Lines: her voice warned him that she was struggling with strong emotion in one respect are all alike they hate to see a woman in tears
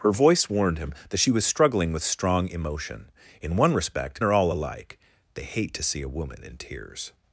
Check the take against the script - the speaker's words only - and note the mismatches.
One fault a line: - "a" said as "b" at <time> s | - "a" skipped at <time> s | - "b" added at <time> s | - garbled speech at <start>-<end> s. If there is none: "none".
none